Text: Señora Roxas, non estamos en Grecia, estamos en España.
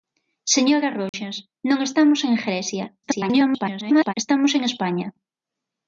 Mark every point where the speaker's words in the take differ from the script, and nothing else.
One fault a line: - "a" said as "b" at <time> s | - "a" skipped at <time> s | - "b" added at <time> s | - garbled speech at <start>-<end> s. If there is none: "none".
- garbled speech at 3.0-4.1 s